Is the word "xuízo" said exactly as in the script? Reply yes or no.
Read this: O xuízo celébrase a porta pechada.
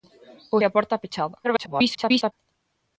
no